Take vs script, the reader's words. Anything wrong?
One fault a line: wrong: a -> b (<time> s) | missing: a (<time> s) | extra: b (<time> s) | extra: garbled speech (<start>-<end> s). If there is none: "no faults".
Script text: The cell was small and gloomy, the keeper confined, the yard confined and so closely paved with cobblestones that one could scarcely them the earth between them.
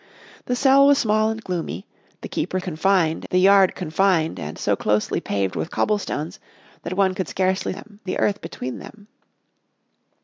no faults